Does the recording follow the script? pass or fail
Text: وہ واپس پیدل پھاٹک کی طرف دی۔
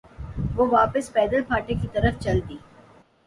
fail